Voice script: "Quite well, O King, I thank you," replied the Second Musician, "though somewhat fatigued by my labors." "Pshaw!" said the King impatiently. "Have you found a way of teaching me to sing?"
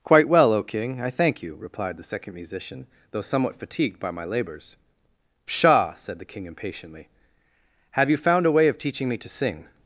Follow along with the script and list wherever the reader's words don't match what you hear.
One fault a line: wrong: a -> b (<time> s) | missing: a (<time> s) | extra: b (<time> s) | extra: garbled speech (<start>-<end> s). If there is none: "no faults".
no faults